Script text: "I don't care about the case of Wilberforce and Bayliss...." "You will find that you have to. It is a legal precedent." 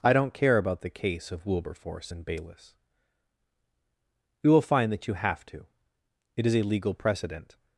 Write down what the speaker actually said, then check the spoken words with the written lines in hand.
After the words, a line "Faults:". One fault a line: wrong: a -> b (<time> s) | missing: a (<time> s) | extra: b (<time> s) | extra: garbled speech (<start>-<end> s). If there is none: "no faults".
"I don't care about the case of Wilberforce and Bayliss...." "You will find that you have to. It is a legal precedent."
Faults:
no faults